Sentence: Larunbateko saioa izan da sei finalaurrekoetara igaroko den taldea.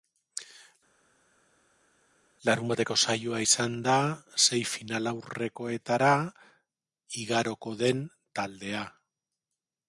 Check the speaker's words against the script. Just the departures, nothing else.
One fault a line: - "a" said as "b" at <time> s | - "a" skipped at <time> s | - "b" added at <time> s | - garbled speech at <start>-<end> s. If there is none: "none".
none